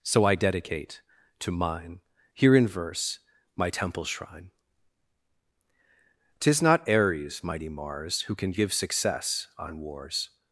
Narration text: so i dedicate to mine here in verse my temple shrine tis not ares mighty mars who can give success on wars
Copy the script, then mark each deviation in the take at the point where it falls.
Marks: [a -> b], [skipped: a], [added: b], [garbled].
so i dedicate to mine here in verse my temple shrine tis not ares mighty mars who can give success on wars